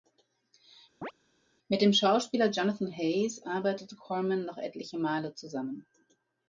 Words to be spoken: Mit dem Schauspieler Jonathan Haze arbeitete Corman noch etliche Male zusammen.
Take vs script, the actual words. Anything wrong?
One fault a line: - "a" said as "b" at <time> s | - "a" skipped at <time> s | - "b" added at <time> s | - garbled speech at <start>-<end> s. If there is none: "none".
none